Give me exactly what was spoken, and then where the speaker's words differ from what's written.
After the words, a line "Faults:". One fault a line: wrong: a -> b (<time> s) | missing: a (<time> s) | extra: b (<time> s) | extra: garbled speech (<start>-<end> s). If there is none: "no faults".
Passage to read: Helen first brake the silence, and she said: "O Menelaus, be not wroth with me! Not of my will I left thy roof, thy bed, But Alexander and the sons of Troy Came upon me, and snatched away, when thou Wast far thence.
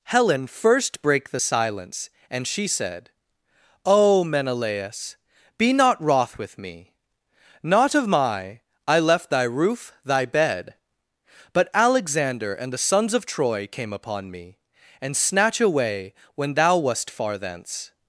Helen first brake the silence, and she said: "O Menelaus, be not wroth with me! Not of my I left thy roof, thy bed, But Alexander and the sons of Troy Came upon me, and snatch away, when thou Wast far thence.
Faults:
missing: will (8.6 s)
wrong: snatched -> snatch (15.2 s)